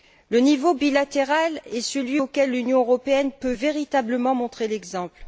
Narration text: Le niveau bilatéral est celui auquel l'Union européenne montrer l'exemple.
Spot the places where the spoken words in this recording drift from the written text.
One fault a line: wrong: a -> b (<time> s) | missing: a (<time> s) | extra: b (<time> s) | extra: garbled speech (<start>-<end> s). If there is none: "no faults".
extra: peut véritablement (3.3 s)